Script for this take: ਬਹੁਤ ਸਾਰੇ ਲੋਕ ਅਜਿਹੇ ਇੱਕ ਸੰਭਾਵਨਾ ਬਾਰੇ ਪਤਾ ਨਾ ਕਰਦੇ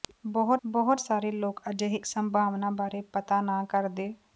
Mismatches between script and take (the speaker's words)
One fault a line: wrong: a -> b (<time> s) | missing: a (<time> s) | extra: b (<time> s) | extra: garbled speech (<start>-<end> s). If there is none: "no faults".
extra: ਬਹੁਤ (0.7 s)
missing: ਇੱਕ (2.0 s)